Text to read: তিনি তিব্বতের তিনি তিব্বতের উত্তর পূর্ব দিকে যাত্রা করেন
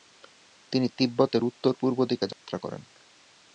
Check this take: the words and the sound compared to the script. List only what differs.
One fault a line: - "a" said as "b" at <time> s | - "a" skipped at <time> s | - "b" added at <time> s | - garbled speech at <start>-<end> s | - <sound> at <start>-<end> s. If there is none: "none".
- "তিনি তিব্বতের" skipped at 1.4 s
- dropout at 2.3-2.4 s